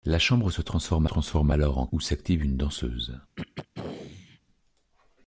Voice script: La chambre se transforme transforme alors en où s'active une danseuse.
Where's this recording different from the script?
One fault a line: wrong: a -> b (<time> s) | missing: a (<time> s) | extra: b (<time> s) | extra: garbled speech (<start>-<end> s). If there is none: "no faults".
no faults